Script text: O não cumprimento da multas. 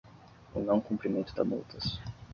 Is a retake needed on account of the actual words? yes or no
no